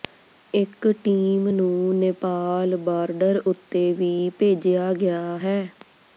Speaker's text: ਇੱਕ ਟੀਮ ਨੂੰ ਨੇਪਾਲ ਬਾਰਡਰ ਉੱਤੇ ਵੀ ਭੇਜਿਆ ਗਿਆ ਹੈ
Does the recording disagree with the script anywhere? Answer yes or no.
no